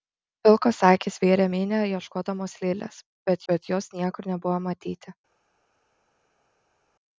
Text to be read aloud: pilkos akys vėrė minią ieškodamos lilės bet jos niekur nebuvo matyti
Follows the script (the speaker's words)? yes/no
no